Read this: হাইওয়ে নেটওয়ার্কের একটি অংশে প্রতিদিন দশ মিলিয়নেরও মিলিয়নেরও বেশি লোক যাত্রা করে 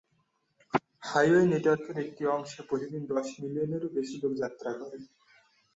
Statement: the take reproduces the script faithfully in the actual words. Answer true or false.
false